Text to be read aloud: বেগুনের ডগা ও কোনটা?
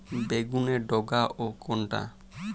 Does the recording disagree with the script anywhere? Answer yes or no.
no